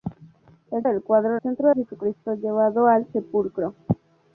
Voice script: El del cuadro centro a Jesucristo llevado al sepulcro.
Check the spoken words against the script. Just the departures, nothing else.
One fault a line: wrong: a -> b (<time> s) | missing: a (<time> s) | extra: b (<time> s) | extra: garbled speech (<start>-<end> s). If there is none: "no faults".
no faults